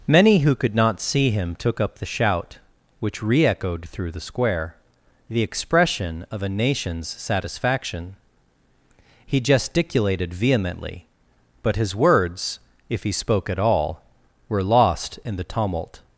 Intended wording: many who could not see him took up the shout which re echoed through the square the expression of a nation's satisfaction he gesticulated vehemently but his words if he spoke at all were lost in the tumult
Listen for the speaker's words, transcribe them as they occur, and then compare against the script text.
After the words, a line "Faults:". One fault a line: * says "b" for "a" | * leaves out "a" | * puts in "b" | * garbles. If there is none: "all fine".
many who could not see him took up the shout which re echoed through the square the expression of a nation's satisfaction he gesticulated vehemently but his words if he spoke at all were lost in the tumult
Faults:
all fine